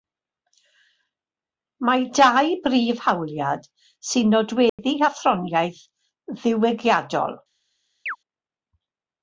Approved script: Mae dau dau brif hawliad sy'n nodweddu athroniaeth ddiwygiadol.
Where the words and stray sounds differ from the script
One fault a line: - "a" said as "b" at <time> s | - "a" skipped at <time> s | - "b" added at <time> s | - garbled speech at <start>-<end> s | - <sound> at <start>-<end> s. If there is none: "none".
- "dau" skipped at 2.5 s
- dropout at 4.7-4.8 s
- chirp at 8.1-8.2 s